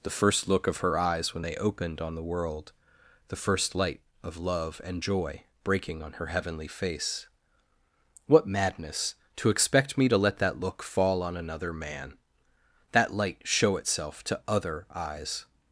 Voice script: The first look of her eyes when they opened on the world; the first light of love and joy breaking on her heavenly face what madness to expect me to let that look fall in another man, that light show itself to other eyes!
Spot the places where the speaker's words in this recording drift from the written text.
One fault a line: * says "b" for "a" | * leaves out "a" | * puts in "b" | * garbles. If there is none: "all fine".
* says "on" for "in"